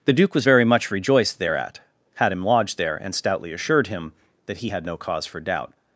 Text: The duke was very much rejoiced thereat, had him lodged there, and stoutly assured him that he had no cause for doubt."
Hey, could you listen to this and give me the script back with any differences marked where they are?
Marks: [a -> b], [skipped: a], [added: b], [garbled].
The duke was very much rejoiced thereat, had him lodged there, and stoutly assured him that he had no cause for doubt."